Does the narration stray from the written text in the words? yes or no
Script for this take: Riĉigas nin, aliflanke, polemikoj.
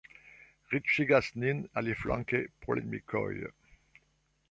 no